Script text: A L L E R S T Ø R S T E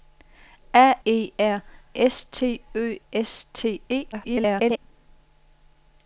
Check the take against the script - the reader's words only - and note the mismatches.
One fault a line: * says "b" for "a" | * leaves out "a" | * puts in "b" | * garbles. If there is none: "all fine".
* leaves out "L L"
* leaves out "R"
* garbles